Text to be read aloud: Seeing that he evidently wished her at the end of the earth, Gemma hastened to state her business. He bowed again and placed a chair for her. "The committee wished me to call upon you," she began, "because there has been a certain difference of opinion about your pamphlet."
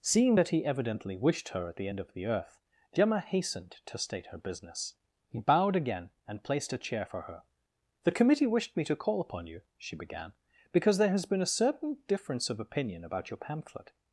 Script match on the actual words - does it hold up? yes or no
yes